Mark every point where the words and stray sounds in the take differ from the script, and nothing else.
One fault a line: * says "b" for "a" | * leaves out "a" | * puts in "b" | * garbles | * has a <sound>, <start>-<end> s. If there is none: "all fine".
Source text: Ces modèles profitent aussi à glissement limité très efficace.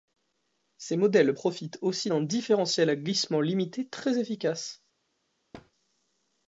* puts in "d'un différentiel"
* has a thud, 5.5-5.7 s